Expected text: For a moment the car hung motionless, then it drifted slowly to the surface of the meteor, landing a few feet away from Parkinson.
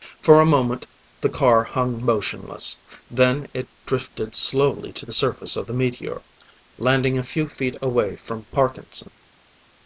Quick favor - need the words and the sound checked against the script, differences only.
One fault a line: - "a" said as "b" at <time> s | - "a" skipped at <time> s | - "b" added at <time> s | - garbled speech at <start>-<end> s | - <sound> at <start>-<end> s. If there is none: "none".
none